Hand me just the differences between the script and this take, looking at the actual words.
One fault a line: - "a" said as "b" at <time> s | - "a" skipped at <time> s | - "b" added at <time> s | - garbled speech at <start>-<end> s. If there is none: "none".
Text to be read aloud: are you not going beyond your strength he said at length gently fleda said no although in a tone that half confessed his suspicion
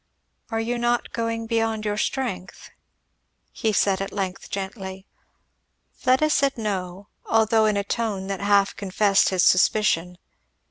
none